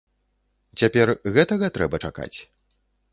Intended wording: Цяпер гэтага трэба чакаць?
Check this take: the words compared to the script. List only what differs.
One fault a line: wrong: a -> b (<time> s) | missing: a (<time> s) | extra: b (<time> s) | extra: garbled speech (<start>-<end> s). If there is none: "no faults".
no faults